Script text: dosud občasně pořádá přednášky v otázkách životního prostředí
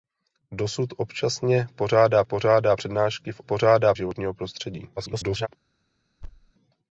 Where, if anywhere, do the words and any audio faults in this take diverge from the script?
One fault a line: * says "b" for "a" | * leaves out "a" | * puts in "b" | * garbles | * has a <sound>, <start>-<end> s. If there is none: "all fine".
* puts in "pořádá"
* says "pořádá" for "otázkách"
* garbles
* has a thud, 6.2-6.5 s